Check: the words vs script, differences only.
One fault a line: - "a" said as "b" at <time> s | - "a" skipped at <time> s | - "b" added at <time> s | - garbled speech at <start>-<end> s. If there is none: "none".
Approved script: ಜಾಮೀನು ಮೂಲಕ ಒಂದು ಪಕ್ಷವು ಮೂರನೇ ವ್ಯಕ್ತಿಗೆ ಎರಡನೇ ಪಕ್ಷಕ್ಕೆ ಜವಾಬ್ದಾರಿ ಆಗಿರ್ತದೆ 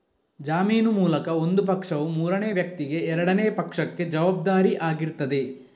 none